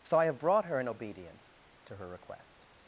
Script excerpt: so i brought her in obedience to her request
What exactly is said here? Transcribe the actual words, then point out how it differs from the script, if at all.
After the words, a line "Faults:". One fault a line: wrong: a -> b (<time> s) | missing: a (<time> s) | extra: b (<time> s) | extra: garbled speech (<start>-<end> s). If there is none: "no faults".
so i have brought her in obedience to her request
Faults:
extra: have (0.2 s)